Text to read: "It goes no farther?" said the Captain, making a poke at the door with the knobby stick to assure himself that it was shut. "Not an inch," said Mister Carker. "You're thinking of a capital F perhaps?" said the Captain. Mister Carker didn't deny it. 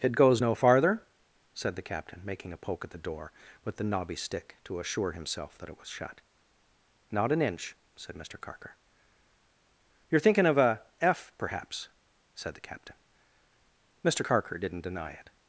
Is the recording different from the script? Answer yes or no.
yes